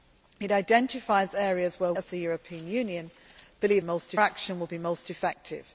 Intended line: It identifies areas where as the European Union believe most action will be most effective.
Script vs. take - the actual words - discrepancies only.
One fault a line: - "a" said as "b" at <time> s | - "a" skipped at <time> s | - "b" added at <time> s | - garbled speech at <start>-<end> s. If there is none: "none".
none